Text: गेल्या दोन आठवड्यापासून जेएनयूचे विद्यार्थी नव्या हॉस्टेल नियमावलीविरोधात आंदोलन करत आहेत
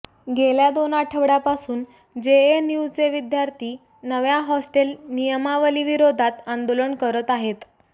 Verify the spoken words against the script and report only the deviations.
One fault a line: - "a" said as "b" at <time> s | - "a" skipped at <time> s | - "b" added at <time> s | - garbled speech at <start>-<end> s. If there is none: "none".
none